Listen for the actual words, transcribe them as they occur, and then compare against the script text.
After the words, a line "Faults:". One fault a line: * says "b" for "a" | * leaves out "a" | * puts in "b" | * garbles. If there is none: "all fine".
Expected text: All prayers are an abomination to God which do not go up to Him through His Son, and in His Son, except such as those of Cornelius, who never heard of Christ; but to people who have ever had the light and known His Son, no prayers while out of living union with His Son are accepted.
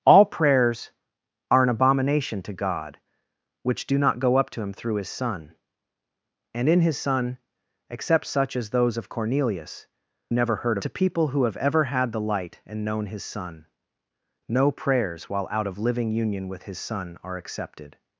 All prayers are an abomination to God which do not go up to Him through His Son, and in His Son, except such as those of Cornelius, never heard to people who have ever had the light and known His Son, no prayers while out of living union with His Son are accepted.
Faults:
* leaves out "who"
* leaves out "of Christ but"